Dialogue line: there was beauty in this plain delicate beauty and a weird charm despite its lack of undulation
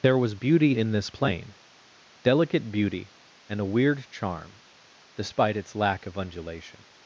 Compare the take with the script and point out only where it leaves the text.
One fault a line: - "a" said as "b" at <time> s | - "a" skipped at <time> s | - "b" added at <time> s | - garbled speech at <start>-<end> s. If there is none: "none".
none